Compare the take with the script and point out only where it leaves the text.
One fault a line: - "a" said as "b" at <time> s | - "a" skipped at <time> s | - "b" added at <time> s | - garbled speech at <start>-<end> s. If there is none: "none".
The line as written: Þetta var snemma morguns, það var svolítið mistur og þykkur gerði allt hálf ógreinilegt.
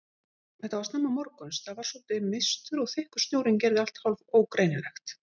- "snjórinn" added at 3.3 s